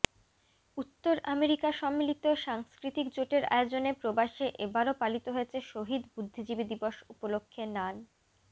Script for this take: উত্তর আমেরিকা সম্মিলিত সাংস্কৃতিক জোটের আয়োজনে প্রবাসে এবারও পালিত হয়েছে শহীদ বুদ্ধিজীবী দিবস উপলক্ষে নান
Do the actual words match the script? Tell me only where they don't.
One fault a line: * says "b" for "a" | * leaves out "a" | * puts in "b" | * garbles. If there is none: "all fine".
all fine